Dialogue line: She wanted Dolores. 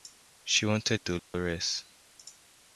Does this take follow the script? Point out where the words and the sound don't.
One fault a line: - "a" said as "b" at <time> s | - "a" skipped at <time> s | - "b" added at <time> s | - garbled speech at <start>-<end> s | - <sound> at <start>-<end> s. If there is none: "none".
- dropout at 1.2-1.3 s